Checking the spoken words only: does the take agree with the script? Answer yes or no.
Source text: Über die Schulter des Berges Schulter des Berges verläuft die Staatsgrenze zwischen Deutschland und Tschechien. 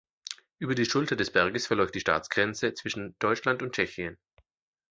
no